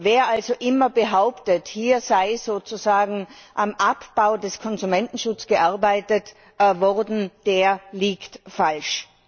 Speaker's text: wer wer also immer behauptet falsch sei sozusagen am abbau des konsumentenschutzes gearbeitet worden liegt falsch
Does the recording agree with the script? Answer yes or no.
no